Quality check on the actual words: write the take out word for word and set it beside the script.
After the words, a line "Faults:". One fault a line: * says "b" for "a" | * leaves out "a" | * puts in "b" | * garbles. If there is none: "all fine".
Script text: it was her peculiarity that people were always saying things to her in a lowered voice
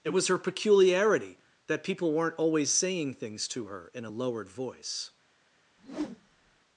it was her peculiarity that people weren't always saying things to her in a lowered voice
Faults:
* says "weren't" for "were"